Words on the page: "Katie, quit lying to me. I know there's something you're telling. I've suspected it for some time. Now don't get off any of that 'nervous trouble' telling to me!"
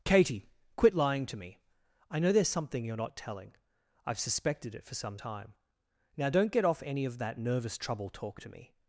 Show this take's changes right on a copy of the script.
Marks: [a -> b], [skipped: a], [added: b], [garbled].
"Katie, quit lying to me. I know there's something you're [added: not] telling. I've suspected it for some time. Now don't get off any of that 'nervous trouble' [telling -> talk] to me!"